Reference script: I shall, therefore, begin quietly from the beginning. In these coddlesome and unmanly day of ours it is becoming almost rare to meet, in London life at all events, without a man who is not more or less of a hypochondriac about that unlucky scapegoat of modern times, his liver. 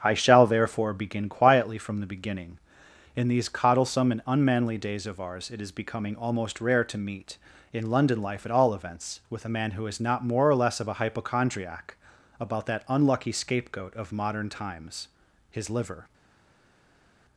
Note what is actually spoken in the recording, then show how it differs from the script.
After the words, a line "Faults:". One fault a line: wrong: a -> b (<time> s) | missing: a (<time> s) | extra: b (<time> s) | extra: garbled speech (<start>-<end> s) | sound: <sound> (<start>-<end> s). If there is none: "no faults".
I shall, therefore, begin quietly from the beginning. In these coddlesome and unmanly days of ours it is becoming almost rare to meet, in London life at all events, with a man who is not more or less of a hypochondriac about that unlucky scapegoat of modern times, his liver.
Faults:
wrong: day -> days (4.8 s)
wrong: without -> with (9.3 s)